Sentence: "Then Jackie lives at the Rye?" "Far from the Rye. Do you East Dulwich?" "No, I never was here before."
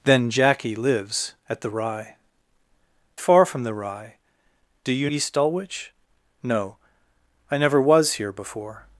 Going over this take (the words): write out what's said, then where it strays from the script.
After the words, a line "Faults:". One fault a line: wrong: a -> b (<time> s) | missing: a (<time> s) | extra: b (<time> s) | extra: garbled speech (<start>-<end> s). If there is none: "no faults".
"Then Jackie lives at the Rye?" "Far from the Rye. Do you East Dulwich?" "No, I never was here before."
Faults:
no faults